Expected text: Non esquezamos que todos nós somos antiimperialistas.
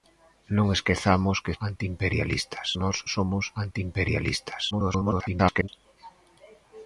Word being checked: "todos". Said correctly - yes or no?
no